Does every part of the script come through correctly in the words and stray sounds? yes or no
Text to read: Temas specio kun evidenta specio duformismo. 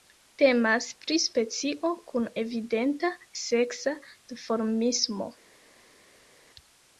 no